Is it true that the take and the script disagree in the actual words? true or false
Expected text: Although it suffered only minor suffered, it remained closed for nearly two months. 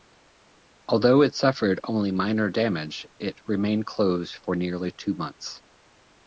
true